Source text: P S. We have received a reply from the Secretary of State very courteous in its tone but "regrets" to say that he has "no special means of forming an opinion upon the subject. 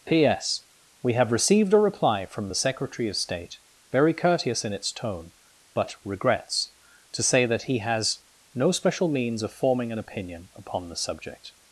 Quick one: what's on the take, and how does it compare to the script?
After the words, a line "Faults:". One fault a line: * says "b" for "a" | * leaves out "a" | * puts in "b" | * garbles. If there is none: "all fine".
P S. We have received a reply from the Secretary of State very courteous in its tone but "regrets" to say that he has "no special means of forming an opinion upon the subject.
Faults:
all fine